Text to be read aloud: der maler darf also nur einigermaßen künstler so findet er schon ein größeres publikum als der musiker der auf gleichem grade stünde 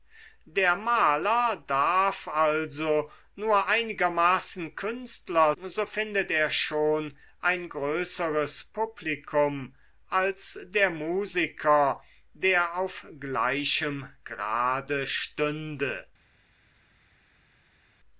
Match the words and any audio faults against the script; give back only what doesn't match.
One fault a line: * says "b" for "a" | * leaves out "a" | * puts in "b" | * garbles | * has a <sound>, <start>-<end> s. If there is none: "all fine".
all fine